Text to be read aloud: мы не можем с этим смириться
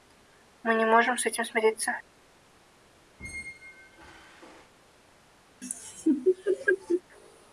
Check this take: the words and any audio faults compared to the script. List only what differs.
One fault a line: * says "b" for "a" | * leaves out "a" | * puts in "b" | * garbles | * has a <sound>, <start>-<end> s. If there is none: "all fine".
* has a squeak, 3.2-4.7 s
* has a laugh, 5.6-7.0 s